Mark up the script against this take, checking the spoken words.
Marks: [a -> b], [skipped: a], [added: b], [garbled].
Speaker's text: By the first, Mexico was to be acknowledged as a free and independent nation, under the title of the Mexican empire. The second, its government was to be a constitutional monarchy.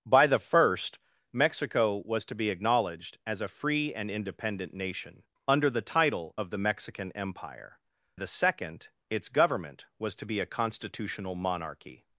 By the first, Mexico was to be acknowledged as a free and independent nation, under the title of the Mexican empire. The second, its government was to be a constitutional monarchy.